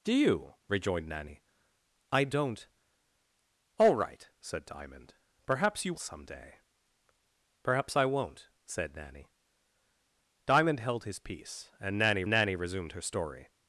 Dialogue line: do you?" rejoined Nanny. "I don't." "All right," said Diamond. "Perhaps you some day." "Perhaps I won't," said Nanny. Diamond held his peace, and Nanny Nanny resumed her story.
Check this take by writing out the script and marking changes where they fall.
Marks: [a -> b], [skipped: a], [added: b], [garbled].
do you?" rejoined Nanny. "I don't." "All right," said Diamond. "Perhaps you some day." "Perhaps I won't," said Nanny. Diamond held his peace, and Nanny Nanny resumed her story.